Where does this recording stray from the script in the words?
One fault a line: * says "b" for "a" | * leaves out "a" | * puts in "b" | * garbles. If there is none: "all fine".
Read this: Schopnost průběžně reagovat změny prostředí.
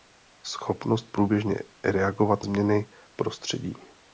all fine